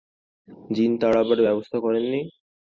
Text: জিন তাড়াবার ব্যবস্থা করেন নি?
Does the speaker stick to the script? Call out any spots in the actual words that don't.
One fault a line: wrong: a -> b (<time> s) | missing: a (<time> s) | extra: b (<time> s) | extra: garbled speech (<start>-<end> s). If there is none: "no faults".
no faults